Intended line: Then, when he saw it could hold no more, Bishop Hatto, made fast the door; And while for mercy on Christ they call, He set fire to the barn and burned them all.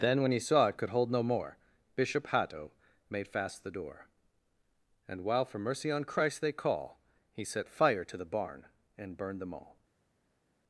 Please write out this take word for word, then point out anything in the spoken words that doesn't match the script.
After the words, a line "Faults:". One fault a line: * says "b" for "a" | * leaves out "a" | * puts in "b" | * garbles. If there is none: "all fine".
Then, when he saw it could hold no more, Bishop Hatto, made fast the door; And while for mercy on Christ they call, He set fire to the barn and burned them all.
Faults:
all fine